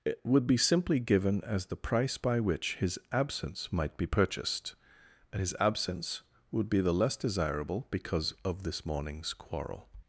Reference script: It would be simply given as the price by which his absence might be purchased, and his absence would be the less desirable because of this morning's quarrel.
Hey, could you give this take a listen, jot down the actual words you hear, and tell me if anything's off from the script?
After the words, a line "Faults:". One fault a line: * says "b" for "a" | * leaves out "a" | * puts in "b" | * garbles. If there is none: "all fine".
It would be simply given as the price by which his absence might be purchased, and his absence would be the less desirable because of this morning's quarrel.
Faults:
all fine